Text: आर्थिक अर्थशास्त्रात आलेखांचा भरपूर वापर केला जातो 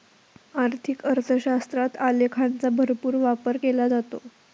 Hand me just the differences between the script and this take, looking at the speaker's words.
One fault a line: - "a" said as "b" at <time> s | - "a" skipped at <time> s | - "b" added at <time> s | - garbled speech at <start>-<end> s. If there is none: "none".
none